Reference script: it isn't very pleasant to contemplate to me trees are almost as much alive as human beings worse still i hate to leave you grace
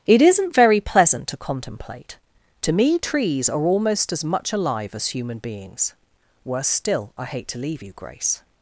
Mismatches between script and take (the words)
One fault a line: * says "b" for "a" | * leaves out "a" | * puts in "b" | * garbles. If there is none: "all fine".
all fine